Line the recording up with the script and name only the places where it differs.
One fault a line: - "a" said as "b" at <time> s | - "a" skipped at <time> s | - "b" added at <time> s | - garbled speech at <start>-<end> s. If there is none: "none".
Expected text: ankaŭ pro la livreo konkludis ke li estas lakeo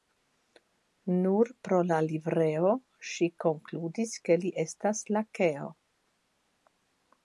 - "ankaŭ" said as "nur" at 1.2 s
- "ŝi" added at 3.1 s